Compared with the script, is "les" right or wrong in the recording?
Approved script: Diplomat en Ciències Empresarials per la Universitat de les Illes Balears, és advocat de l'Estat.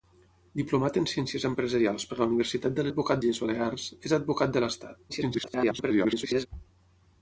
wrong